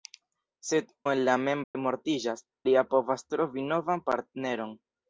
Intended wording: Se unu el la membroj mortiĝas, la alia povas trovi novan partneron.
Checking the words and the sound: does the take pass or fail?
fail